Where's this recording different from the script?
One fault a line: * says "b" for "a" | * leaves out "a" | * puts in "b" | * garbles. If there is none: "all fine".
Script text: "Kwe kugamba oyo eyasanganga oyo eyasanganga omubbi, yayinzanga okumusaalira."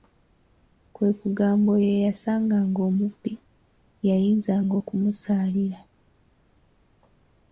* leaves out "oyo eyasanganga"